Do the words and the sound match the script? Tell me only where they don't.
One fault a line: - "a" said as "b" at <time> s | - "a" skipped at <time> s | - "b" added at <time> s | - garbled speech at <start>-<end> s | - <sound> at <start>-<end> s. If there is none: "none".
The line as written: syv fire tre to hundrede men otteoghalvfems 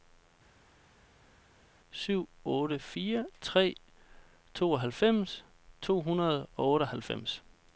- "otte" added at 2.4 s
- "tooghalvfems" added at 4.5 s
- "men" said as "og" at 6.6 s